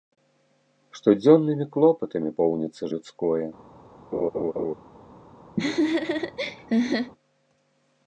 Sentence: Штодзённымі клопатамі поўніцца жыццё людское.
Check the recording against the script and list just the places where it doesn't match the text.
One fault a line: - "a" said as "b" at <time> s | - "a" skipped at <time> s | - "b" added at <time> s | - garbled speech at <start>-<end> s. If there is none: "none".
- "жыццё" skipped at 2.8 s